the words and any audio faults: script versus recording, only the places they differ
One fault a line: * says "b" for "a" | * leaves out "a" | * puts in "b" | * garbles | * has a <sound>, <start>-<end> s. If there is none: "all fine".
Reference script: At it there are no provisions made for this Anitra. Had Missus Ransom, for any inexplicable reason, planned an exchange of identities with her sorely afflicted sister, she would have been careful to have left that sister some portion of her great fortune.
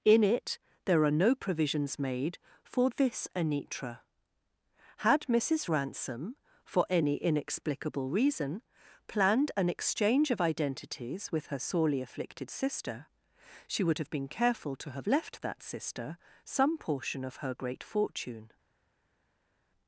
* says "In" for "At"